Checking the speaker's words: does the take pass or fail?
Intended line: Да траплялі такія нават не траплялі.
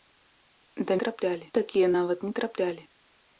pass